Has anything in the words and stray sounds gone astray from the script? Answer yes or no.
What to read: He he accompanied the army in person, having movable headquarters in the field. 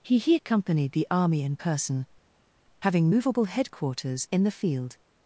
no